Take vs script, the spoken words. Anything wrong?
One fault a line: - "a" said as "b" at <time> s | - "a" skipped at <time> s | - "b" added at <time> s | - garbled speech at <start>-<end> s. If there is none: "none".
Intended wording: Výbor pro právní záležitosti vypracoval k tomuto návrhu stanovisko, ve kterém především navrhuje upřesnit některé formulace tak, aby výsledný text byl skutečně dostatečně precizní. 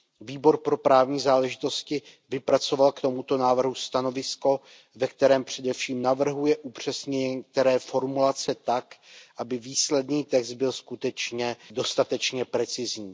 none